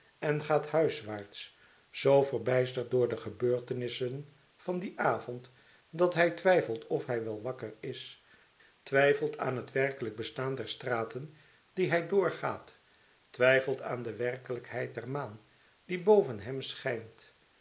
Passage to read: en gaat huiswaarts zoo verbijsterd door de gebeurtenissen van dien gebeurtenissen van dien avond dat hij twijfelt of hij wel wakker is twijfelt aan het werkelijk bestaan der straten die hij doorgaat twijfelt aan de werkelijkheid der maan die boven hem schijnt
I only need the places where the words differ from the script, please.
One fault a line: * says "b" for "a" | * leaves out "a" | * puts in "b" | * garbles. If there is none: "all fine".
* leaves out "gebeurtenissen van dien"